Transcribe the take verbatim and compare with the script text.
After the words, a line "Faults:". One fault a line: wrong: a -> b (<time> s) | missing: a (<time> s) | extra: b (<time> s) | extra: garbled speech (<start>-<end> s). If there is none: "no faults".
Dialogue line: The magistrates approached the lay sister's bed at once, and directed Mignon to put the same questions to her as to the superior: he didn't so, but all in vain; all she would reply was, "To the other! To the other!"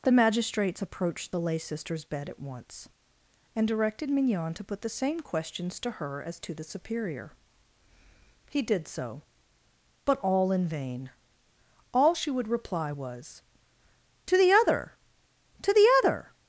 The magistrates approached the lay sister's bed at once, and directed Mignon to put the same questions to her as to the superior: he did so, but all in vain; all she would reply was, "To the other! To the other!"
Faults:
wrong: didn't -> did (8.6 s)